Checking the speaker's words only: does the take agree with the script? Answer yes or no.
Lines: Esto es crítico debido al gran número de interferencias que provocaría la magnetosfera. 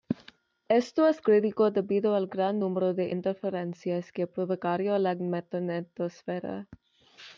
yes